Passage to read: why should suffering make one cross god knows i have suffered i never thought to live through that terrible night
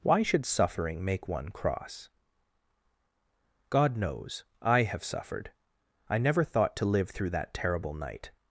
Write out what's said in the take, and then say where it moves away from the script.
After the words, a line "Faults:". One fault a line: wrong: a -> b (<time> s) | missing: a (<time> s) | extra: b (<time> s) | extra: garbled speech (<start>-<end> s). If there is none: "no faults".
why should suffering make one cross god knows i have suffered i never thought to live through that terrible night
Faults:
no faults